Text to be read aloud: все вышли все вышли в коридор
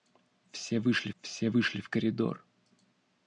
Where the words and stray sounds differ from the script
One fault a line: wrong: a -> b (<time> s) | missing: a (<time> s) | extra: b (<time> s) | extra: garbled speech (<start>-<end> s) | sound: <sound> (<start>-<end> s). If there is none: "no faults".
no faults